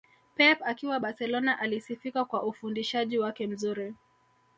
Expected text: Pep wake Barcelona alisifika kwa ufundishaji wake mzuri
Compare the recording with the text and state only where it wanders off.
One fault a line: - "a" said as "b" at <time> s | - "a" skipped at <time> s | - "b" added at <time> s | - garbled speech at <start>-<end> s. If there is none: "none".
- "wake" said as "akiwa" at 0.6 s